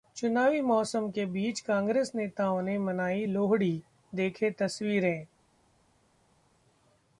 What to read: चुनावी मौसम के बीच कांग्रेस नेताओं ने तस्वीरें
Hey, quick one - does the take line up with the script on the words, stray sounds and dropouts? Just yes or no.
no